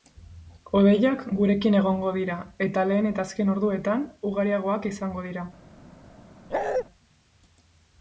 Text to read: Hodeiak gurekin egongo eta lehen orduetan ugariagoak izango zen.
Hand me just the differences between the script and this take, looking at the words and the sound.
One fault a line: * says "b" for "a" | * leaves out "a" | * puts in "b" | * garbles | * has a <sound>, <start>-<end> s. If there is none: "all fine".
* puts in "dira"
* puts in "eta azken"
* says "dira" for "zen"
* has a bark, 6.5-6.8 s